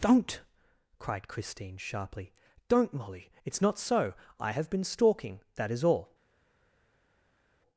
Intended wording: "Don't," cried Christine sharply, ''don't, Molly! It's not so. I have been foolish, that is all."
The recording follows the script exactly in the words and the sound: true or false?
false